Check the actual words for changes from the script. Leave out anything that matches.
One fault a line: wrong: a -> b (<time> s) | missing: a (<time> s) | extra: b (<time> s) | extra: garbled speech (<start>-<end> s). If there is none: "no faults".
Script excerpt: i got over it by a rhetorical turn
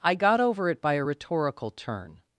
no faults